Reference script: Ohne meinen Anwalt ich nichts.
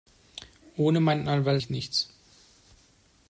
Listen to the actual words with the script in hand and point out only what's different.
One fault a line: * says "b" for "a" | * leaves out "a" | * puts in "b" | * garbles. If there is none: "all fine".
all fine